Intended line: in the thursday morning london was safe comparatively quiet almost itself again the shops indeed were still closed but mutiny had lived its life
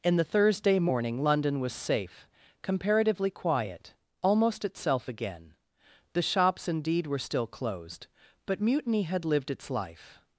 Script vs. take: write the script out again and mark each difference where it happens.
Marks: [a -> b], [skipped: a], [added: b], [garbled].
in the thursday morning london was safe comparatively quiet almost itself again the shops indeed were still closed but mutiny had lived its life